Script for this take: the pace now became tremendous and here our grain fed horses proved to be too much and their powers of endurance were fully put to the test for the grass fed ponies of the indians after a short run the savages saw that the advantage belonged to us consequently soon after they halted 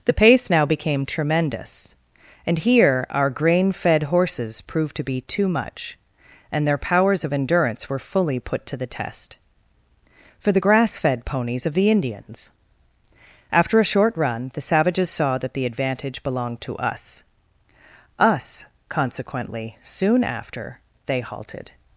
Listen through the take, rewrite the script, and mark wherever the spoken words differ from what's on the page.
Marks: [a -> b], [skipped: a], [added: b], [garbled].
the pace now became tremendous and here our grain fed horses proved to be too much and their powers of endurance were fully put to the test for the grass fed ponies of the indians after a short run the savages saw that the advantage belonged to us [added: us] consequently soon after they halted